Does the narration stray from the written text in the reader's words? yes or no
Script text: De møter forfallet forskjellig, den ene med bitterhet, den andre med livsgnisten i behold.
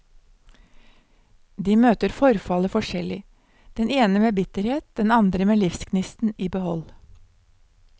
no